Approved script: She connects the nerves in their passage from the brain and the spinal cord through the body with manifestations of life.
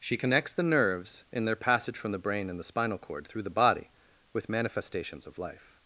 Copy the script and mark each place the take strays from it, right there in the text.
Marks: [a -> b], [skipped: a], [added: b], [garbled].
She connects the nerves in their passage from the brain and the spinal cord through the body with manifestations of life.